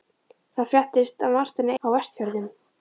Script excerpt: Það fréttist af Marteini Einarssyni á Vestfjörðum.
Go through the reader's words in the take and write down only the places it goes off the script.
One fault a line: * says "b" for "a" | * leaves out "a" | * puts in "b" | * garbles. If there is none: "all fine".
* leaves out "Einarssyni"